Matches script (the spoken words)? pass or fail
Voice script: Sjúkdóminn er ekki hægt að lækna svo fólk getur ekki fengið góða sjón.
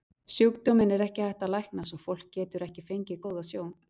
pass